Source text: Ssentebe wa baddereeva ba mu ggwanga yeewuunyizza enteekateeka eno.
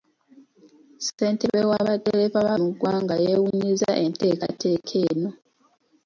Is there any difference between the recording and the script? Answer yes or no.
no